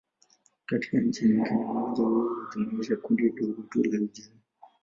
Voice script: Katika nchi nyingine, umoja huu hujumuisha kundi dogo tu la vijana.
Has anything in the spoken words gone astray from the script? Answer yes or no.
no